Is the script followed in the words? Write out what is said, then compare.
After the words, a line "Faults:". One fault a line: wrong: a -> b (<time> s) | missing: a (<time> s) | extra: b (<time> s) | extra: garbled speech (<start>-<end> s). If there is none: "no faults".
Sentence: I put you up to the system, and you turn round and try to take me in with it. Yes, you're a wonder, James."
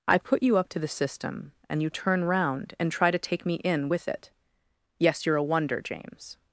I put you up to the system, and you turn round and try to take me in with it. Yes, you're a wonder, James."
Faults:
no faults